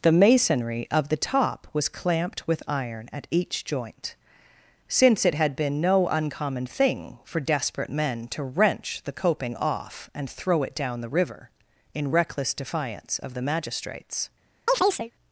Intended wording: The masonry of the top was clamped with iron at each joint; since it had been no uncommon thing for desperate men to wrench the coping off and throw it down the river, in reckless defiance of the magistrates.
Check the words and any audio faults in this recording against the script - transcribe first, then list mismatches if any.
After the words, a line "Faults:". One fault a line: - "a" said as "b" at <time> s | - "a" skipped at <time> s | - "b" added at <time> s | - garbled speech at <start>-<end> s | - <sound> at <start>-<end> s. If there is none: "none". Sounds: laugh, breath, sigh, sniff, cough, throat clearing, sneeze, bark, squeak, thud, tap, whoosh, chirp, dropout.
The masonry of the top was clamped with iron at each joint; since it had been no uncommon thing for desperate men to wrench the coping off and throw it down the river, in reckless defiance of the magistrates.
Faults:
- chirp at 14.7-15.1 s